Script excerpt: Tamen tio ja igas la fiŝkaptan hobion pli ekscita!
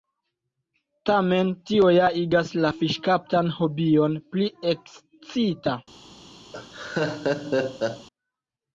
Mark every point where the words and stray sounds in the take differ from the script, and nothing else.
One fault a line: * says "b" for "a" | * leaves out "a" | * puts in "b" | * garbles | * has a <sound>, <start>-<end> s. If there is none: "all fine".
* has a laugh, 6.5-8.1 s